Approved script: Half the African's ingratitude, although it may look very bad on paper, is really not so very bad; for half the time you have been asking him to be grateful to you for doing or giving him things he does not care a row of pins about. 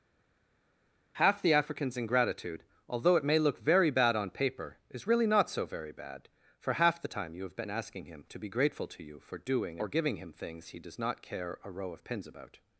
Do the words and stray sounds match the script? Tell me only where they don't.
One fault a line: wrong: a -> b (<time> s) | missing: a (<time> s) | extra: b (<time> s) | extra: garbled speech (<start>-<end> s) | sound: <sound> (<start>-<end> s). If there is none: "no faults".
no faults